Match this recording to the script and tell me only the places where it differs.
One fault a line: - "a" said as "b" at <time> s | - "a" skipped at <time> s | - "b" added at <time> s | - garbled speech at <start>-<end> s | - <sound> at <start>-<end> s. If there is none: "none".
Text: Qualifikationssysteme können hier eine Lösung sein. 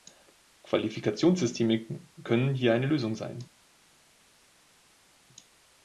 none